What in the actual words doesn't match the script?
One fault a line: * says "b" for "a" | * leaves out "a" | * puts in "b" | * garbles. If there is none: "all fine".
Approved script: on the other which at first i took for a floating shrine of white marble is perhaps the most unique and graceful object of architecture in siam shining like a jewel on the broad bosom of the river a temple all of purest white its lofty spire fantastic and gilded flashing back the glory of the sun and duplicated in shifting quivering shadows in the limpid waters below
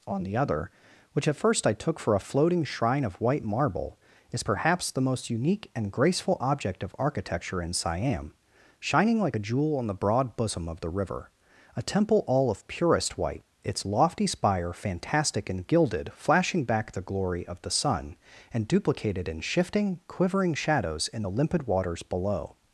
all fine